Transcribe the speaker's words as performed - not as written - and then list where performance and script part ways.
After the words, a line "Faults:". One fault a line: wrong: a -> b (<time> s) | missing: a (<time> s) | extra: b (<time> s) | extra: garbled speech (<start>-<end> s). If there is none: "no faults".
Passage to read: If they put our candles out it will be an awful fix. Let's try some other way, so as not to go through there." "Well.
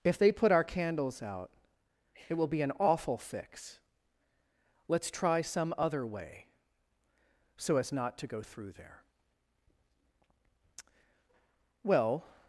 If they put our candles out it will be an awful fix. Let's try some other way, so as not to go through there." "Well.
Faults:
no faults